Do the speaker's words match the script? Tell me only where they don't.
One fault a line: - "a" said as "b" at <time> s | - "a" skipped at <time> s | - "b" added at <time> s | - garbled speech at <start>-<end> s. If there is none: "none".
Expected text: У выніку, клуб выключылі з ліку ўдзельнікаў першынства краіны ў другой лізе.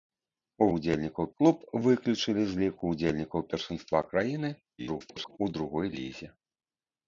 - "выніку" said as "ўдзельнікаў" at 0.8 s
- garbled speech at 4.8-5.4 s